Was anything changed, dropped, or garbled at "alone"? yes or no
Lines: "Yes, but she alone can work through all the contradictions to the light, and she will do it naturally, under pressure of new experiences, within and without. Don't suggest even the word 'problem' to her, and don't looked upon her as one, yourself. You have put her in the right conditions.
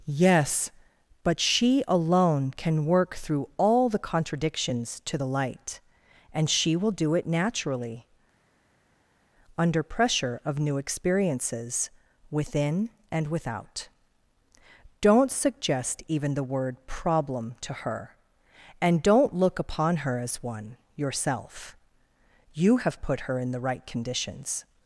no